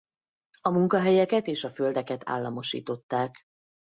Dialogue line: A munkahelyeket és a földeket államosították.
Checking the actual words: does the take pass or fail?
pass